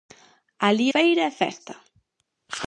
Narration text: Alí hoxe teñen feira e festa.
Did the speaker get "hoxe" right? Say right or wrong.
wrong